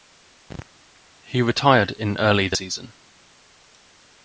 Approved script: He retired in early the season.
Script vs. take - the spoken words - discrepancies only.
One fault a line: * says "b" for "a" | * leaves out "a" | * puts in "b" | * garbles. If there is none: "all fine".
all fine